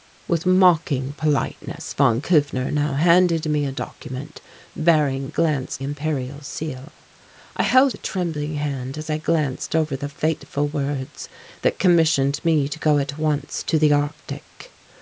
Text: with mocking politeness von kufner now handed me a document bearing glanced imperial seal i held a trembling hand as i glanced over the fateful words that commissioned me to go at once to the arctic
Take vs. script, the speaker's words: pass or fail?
pass